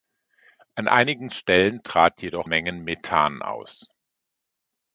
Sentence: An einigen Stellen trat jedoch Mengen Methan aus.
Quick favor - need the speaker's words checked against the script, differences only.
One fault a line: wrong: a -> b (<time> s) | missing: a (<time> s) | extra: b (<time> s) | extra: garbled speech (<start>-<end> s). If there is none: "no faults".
no faults